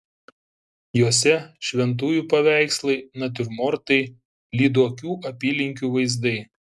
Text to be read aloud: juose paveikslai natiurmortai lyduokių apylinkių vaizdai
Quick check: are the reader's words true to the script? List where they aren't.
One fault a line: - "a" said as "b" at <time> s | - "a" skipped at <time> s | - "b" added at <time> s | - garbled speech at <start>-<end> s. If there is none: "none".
- "šventųjų" added at 1.7 s